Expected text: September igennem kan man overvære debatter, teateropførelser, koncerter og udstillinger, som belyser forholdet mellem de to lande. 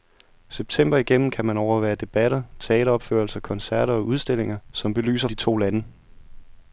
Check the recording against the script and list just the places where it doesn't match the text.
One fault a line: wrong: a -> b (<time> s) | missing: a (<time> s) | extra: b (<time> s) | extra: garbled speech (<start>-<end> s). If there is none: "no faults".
missing: forholdet mellem (5.3 s)